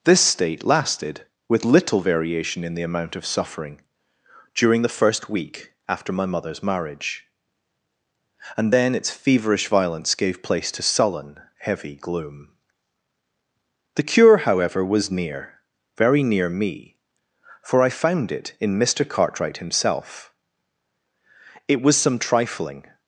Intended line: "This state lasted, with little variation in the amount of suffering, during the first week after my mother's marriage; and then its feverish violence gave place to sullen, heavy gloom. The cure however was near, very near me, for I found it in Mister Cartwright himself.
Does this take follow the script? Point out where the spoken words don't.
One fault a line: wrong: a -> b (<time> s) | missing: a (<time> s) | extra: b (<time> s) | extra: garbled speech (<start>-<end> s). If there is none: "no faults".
extra: It was some trifling (21.7 s)